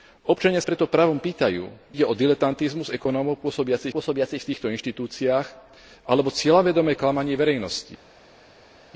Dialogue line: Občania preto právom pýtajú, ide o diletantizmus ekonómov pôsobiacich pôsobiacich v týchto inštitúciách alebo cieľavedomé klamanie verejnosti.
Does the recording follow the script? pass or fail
pass